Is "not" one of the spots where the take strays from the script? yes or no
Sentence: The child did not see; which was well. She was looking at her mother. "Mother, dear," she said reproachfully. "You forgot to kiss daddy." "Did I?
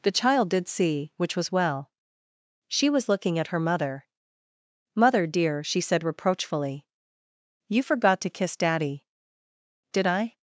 yes